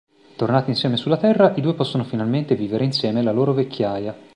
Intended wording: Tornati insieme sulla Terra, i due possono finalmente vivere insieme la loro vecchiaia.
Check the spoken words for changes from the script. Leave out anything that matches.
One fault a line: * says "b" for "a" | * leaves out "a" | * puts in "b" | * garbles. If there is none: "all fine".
all fine